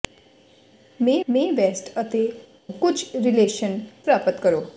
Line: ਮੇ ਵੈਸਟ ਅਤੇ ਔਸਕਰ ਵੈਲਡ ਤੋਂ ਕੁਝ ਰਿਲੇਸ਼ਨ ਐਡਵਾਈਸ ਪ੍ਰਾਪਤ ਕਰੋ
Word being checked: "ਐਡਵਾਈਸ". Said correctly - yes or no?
no